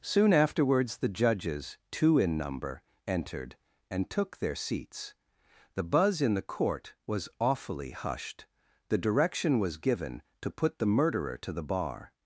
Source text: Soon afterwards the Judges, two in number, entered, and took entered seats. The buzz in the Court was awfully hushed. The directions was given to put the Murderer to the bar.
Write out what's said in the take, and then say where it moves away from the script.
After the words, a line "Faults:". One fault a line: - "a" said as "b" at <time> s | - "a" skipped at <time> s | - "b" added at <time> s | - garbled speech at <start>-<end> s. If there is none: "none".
Soon afterwards the Judges, two in number, entered, and took their seats. The buzz in the Court was awfully hushed. The direction was given to put the Murderer to the bar.
Faults:
- "entered" said as "their" at 4.4 s
- "directions" said as "direction" at 9.0 s